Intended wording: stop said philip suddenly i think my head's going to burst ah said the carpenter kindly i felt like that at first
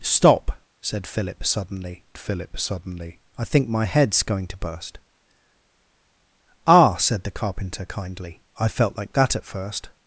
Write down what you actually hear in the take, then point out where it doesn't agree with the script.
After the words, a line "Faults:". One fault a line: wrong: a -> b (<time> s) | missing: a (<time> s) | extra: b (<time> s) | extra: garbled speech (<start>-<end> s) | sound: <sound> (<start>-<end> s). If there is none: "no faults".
stop said philip suddenly philip suddenly i think my head's going to burst ah said the carpenter kindly i felt like that at first
Faults:
extra: philip suddenly (2.2 s)